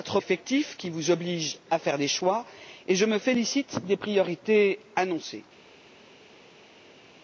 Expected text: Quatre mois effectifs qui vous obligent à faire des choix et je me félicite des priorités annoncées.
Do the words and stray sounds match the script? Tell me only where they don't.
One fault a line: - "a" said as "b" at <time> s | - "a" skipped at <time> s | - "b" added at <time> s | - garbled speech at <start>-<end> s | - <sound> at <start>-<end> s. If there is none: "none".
- "mois" skipped at 0.2 s